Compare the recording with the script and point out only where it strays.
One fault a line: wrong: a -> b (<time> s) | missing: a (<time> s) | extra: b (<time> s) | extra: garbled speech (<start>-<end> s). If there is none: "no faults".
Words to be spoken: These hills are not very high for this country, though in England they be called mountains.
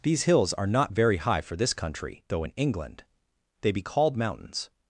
no faults